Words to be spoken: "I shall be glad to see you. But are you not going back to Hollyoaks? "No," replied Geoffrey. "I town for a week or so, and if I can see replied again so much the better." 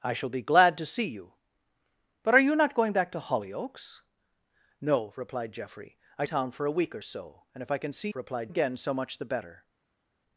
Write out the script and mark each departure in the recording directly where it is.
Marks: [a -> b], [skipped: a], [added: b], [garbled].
"I shall be glad to see you. But are you not going back to Hollyoaks? "No," replied Geoffrey. "I town for a week or so, and if I can see replied again so much the better."